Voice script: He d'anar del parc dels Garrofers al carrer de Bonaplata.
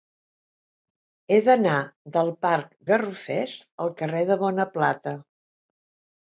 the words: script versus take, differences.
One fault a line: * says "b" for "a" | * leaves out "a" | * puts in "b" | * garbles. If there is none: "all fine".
* leaves out "dels"